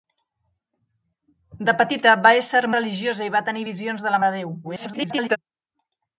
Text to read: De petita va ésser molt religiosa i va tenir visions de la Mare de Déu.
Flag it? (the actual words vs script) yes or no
yes